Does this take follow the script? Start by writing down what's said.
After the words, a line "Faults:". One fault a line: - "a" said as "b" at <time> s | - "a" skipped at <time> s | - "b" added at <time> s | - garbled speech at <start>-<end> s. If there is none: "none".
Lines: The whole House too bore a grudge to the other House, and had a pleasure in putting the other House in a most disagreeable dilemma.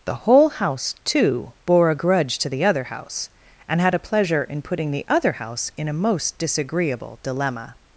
The whole House too bore a grudge to the other House, and had a pleasure in putting the other House in a most disagreeable dilemma.
Faults:
none